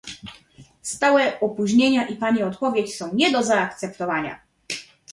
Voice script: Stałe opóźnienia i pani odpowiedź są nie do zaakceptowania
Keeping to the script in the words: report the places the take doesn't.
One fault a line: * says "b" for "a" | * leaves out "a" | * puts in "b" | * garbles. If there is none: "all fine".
all fine